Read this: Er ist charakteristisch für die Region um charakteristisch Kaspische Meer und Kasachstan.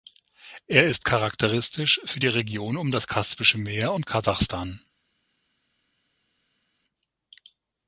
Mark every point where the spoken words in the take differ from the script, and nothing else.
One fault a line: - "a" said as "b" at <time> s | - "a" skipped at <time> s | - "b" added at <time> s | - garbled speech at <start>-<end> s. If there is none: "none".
- "charakteristisch" said as "das" at 2.9 s